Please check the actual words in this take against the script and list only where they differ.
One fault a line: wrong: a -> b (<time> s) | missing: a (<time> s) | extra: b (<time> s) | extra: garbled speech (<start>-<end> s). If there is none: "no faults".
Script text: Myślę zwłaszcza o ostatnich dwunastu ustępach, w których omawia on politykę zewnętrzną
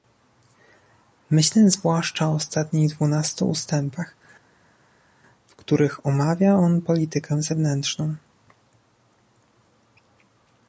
no faults